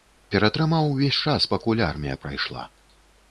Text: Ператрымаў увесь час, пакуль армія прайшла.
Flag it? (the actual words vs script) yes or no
no